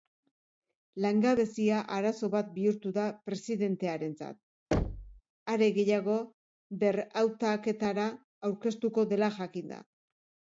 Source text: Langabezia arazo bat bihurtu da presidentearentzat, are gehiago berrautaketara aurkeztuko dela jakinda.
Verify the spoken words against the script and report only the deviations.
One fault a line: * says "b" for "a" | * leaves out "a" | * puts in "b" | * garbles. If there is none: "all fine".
all fine